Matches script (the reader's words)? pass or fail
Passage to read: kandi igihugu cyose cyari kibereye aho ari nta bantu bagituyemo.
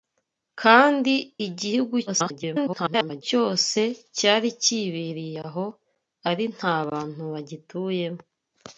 fail